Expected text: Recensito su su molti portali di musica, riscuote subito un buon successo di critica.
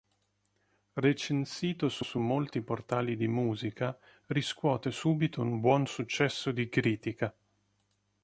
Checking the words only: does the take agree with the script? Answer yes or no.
yes